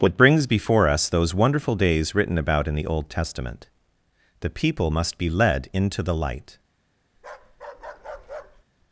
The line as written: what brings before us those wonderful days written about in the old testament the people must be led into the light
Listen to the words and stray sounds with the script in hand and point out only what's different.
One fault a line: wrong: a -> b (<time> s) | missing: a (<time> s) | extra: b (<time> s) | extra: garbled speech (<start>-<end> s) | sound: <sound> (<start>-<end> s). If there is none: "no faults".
sound: bark (7.2-8.6 s)